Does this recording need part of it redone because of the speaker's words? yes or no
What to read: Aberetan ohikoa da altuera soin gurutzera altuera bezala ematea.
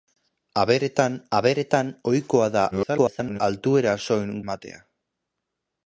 yes